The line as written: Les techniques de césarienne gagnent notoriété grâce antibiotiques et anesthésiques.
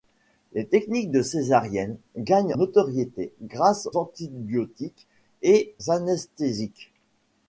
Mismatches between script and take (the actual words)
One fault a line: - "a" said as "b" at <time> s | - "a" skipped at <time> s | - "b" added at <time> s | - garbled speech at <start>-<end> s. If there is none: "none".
none